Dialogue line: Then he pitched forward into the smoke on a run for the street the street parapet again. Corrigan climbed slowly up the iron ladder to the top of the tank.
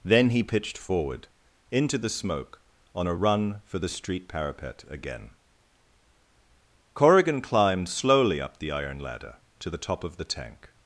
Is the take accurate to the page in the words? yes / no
no